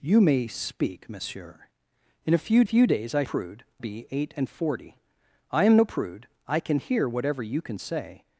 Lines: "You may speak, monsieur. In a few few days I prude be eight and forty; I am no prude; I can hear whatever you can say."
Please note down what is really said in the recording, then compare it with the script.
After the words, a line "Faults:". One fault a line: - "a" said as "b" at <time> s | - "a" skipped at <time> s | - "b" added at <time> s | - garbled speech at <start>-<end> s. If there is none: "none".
"You may speak, monsieur. In a few few days I prude be eight and forty; I am no prude; I can hear whatever you can say."
Faults:
none